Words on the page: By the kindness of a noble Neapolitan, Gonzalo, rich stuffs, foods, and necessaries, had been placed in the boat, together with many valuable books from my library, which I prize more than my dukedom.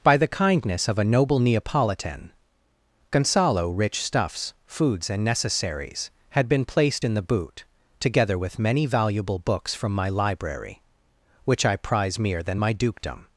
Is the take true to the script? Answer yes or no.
no